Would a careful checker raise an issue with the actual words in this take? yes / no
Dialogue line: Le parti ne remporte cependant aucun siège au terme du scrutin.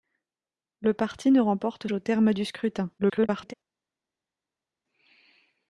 yes